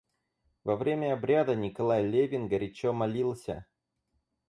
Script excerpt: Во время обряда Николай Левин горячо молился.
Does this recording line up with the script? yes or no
yes